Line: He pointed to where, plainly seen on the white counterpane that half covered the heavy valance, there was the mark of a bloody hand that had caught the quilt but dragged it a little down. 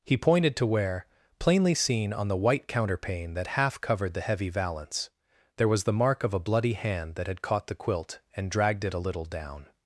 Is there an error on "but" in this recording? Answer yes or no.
yes